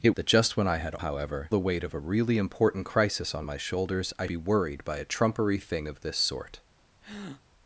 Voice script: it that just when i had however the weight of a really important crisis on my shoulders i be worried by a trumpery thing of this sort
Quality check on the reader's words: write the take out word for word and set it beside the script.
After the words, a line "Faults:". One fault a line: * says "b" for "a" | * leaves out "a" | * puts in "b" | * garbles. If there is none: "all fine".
it that just when i had however the weight of a really important crisis on my shoulders i be worried by a trumpery thing of this sort
Faults:
all fine